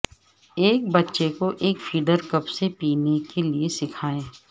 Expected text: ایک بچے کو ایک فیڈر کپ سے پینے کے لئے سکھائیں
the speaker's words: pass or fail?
pass